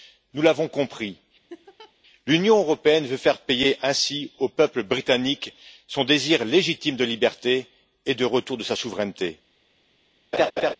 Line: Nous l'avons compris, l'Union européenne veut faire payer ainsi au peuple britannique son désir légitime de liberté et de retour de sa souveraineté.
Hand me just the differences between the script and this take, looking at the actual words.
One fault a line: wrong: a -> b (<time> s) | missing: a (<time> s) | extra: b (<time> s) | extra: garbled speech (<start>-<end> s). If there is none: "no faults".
no faults